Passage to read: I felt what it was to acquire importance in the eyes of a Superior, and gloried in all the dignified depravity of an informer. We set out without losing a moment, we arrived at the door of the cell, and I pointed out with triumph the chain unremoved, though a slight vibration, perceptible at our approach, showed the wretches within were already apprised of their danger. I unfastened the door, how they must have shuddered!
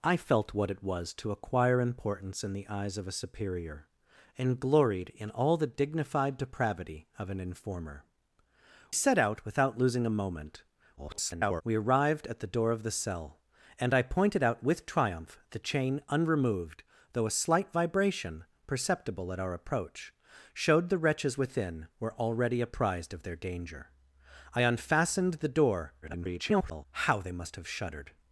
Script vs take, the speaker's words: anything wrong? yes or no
yes